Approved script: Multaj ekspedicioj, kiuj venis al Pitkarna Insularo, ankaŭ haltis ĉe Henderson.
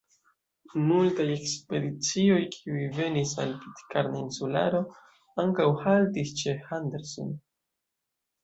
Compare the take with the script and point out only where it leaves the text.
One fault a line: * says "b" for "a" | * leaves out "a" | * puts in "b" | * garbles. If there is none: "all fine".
all fine